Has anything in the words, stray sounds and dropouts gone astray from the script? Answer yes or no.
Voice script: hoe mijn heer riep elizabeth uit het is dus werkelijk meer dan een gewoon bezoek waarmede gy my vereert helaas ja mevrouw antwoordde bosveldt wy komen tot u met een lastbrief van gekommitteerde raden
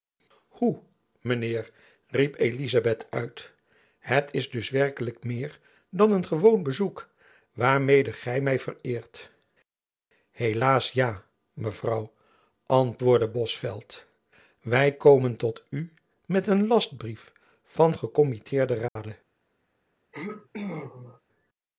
yes